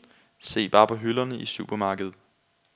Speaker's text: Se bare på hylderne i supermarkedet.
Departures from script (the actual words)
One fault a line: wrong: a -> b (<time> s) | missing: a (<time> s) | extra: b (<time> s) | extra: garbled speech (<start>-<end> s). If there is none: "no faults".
no faults